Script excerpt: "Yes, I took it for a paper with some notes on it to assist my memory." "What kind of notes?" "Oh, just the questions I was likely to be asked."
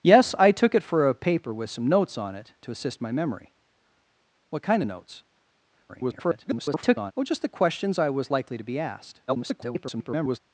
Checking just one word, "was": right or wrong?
right